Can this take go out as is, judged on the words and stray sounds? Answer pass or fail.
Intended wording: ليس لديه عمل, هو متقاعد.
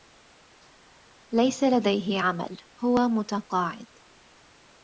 pass